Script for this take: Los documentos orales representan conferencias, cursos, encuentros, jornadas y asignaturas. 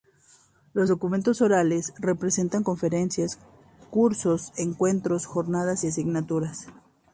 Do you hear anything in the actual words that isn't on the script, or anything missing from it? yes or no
no